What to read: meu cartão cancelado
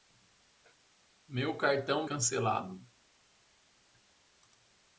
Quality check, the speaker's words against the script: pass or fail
pass